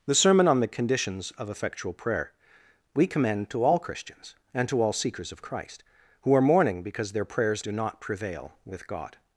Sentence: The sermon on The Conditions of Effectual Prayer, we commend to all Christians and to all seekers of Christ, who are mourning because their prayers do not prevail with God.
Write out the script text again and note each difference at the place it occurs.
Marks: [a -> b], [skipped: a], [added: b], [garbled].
The sermon on The Conditions of Effectual Prayer, we commend to all Christians and to all seekers of Christ, who are mourning because their prayers do not prevail with God.